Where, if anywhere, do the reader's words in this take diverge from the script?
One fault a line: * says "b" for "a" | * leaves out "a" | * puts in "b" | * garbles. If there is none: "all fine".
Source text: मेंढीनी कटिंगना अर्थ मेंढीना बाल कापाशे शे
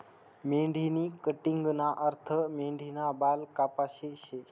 all fine